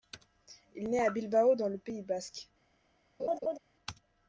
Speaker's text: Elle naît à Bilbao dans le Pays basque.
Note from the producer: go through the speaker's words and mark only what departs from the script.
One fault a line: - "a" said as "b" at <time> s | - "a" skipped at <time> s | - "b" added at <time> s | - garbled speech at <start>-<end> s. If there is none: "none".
- "Elle" said as "Il" at 0.8 s